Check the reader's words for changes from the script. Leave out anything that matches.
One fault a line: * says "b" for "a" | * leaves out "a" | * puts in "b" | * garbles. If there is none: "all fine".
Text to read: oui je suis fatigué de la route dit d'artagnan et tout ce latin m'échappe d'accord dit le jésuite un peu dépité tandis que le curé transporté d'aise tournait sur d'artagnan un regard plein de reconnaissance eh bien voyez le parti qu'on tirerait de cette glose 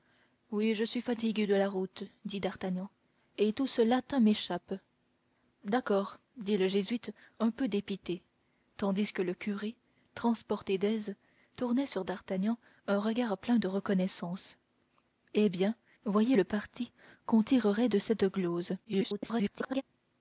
* garbles